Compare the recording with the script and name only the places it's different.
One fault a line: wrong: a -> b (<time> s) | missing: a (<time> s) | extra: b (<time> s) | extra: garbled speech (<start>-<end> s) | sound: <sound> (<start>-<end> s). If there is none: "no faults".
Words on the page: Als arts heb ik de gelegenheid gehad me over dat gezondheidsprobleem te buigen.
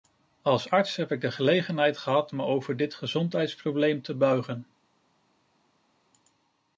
wrong: dat -> dit (2.8 s)